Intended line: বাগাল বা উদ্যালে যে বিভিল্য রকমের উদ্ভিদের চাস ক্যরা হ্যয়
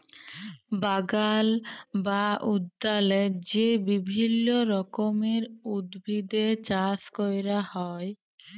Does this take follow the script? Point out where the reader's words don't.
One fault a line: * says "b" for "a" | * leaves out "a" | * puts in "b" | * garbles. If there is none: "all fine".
all fine